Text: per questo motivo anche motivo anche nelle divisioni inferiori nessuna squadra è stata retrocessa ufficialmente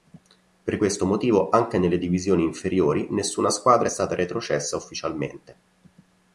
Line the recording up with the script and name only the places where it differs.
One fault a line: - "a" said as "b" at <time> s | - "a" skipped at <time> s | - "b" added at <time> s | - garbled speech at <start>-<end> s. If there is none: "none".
- "motivo anche" skipped at 1.8 s